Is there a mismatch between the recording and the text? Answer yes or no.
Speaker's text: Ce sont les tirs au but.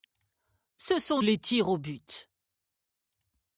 no